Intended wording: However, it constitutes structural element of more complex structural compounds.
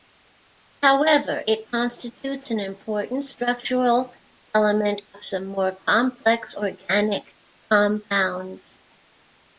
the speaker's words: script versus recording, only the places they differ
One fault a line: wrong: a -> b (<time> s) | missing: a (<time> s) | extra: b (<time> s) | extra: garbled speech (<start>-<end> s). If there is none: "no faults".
extra: an important (2.5 s)
extra: some (5.2 s)
wrong: structural -> organic (6.5 s)